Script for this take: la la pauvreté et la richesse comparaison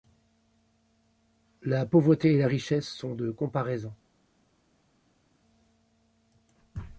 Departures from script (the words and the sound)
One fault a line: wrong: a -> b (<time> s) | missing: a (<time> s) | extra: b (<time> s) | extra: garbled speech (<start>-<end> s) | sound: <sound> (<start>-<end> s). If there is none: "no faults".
missing: la (1.9 s)
extra: sont de (2.9 s)